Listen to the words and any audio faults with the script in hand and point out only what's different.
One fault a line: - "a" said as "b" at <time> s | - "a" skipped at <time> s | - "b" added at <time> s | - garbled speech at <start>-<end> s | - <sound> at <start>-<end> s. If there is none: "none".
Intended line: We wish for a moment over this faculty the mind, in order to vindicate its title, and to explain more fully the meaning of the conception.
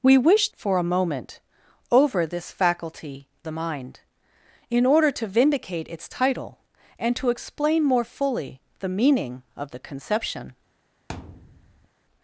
- thud at 11.1-11.9 s